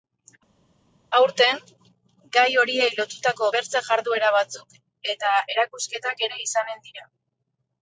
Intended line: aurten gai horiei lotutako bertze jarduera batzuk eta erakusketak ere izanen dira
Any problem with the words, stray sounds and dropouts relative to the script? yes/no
no